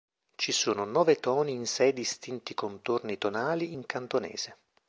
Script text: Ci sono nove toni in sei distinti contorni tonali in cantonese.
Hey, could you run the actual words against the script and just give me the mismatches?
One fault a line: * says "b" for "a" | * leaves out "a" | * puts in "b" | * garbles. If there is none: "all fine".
all fine